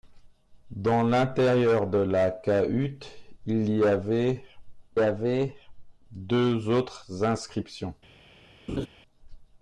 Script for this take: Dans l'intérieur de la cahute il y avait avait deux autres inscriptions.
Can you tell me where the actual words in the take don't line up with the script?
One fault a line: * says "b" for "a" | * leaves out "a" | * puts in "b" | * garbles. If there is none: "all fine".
all fine